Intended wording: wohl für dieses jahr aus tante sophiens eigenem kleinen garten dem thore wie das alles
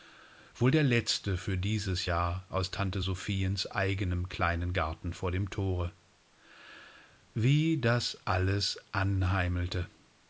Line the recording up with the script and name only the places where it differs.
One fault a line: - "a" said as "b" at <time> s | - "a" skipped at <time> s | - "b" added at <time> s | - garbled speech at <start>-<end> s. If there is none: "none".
- "der letzte" added at 0.7 s
- "vor" added at 5.1 s